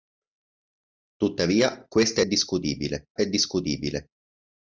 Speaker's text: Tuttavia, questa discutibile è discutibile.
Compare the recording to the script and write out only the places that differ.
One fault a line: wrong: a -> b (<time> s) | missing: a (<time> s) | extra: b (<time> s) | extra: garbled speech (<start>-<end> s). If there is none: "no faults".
no faults